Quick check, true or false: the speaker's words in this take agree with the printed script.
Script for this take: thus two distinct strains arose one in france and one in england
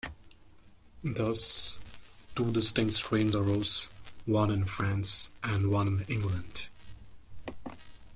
true